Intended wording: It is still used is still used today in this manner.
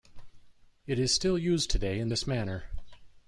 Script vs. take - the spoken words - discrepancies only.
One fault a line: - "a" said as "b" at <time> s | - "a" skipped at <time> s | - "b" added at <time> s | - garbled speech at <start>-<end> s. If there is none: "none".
- "is still used" skipped at 1.7 s